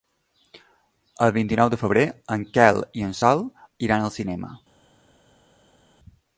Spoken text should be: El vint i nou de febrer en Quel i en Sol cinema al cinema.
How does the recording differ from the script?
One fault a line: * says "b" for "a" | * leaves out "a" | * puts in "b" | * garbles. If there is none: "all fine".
* says "iran" for "cinema"